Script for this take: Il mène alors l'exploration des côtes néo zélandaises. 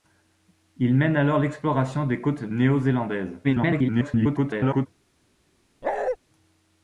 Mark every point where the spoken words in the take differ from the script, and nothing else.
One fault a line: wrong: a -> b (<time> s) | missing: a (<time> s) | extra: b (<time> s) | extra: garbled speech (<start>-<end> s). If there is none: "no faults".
extra: garbled speech (3.4-4.9 s)